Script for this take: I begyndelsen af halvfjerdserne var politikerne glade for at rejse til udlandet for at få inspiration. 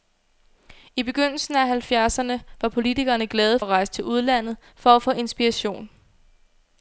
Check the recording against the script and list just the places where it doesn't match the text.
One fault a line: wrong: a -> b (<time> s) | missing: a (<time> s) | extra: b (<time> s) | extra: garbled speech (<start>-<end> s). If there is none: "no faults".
missing: for (3.6 s)